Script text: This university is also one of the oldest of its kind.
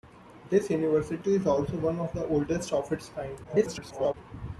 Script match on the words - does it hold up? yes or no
no